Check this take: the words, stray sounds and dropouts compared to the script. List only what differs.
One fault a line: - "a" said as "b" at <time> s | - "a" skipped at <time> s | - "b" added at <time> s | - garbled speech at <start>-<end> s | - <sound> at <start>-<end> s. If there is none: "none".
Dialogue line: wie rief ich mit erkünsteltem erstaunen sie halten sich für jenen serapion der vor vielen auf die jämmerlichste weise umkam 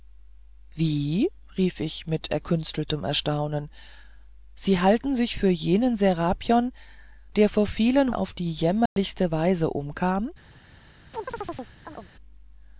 - dropout at 8.9-9.0 s
- chirp at 11.1-12.1 s